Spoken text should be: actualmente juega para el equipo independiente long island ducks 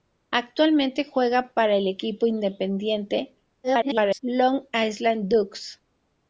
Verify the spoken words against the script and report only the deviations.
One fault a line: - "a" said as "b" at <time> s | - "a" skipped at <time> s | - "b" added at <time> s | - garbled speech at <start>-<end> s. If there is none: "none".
- garbled speech at 3.6-4.2 s